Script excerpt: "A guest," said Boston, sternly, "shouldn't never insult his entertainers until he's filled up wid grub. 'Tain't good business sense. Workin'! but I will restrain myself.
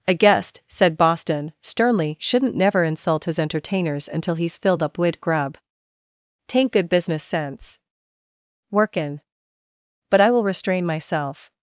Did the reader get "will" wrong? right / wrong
right